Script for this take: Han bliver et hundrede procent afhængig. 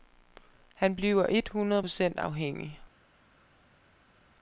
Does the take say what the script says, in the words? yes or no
yes